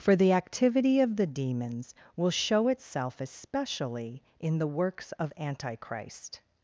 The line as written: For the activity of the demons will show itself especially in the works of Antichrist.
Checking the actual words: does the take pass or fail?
pass